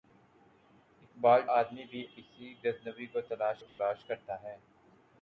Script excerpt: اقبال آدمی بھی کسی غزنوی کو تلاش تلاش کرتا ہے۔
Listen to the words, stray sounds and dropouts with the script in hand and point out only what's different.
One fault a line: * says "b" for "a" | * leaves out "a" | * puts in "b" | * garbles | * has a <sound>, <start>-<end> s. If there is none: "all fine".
* has a dropout, 3.7-3.8 s